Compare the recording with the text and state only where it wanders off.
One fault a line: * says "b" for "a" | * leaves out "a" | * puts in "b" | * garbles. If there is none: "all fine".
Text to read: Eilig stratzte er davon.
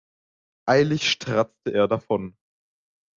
all fine